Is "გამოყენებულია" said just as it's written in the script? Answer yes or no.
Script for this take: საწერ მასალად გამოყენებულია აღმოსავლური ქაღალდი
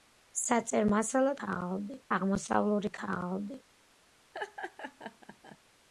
no